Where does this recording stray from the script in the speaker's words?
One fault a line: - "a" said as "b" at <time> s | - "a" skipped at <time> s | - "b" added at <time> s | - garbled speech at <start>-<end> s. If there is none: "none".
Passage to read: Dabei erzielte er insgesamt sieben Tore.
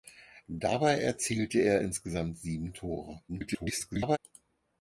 - garbled speech at 3.3-4.2 s